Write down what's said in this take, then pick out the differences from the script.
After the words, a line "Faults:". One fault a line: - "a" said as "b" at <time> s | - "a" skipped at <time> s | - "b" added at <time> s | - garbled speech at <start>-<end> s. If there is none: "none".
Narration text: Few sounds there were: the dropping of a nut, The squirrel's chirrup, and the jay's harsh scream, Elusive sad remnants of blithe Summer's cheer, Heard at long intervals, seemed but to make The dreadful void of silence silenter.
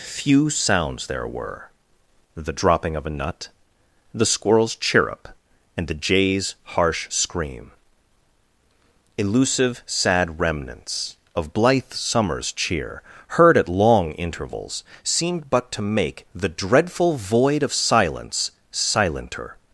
Few sounds there were: the dropping of a nut, The squirrel's chirrup, and the jay's harsh scream, Elusive sad remnants of blithe Summer's cheer, Heard at long intervals, seemed but to make The dreadful void of silence silenter.
Faults:
none